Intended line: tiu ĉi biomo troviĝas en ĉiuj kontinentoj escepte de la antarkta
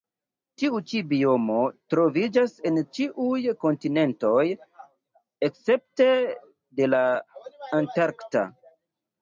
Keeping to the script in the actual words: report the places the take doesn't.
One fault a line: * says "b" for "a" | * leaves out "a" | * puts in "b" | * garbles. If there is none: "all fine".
all fine